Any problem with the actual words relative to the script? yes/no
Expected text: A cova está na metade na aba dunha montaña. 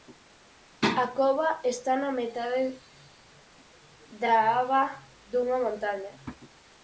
yes